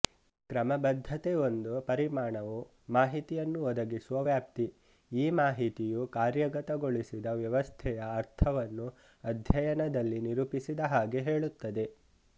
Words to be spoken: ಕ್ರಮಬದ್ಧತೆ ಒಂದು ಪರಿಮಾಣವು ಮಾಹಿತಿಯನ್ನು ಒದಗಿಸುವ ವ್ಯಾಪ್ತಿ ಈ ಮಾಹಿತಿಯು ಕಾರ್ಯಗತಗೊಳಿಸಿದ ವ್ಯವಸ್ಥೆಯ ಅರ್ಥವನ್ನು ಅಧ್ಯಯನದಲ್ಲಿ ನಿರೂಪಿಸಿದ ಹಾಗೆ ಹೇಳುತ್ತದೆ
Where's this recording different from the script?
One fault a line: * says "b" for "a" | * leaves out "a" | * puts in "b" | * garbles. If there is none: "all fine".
all fine